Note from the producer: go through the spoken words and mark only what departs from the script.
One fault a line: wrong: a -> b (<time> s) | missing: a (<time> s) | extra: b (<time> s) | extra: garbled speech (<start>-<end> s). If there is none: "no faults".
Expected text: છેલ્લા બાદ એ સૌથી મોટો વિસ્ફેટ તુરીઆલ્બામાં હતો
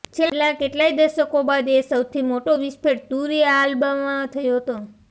extra: કેટલાય દશકો (0.5 s)
extra: થયો (4.3 s)